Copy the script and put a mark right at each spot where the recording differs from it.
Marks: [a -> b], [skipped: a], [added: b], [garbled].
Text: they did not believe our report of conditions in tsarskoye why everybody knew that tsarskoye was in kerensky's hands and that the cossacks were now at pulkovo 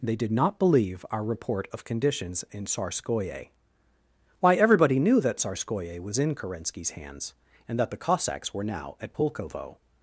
they did not believe our report of conditions in tsarskoye why everybody knew that tsarskoye was in kerensky's hands and that the cossacks were now at pulkovo